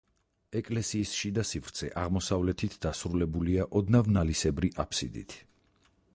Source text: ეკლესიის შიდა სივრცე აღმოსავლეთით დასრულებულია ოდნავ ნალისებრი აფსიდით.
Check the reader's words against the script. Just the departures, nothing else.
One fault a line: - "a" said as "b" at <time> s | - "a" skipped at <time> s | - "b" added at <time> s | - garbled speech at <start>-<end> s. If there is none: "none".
none